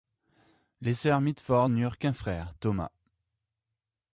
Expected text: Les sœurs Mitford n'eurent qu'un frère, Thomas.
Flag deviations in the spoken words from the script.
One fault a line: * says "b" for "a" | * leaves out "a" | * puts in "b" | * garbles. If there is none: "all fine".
all fine